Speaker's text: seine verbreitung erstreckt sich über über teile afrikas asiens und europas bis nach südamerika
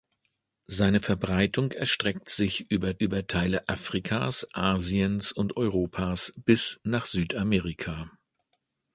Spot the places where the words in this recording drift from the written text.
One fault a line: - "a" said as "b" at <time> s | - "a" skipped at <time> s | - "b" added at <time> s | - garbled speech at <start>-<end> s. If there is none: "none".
none